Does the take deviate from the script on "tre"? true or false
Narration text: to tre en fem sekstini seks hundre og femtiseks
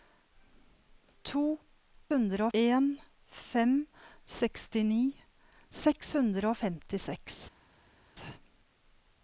true